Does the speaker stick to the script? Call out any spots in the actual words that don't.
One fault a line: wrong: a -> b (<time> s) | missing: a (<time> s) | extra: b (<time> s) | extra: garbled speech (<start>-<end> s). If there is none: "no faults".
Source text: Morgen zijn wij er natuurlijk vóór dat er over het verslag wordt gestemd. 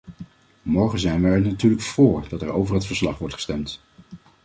no faults